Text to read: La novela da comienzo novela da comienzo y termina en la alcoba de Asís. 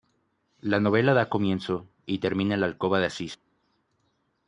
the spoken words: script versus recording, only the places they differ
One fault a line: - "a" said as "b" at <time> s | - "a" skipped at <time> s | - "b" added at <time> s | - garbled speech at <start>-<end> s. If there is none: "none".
- "novela da comienzo" skipped at 1.9 s